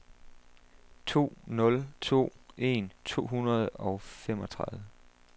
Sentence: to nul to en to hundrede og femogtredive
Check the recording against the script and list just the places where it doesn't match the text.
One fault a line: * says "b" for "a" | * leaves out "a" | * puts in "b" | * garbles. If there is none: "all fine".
all fine